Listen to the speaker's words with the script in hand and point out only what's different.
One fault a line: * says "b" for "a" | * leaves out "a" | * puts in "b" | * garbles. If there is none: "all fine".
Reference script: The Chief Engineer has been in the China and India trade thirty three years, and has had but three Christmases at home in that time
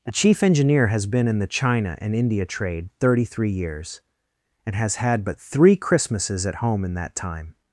all fine